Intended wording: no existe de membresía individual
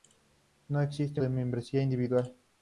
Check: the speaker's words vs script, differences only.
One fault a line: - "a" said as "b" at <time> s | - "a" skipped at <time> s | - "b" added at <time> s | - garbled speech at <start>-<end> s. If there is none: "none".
none